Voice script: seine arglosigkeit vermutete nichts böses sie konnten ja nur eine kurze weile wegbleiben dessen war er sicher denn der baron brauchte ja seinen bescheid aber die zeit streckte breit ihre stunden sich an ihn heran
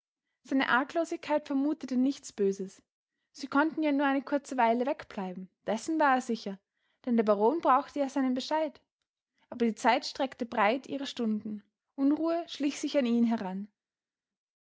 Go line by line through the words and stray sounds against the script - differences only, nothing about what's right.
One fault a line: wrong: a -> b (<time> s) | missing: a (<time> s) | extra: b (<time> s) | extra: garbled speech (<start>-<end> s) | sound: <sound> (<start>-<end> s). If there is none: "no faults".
extra: unruhe schlich (11.9 s)